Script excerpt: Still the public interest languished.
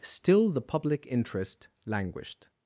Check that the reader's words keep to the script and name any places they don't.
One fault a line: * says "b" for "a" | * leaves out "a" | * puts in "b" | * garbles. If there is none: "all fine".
all fine